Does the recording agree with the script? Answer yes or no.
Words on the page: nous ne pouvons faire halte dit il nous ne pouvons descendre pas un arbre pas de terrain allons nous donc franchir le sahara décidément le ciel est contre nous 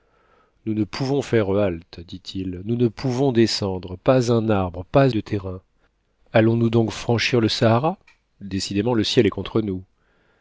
yes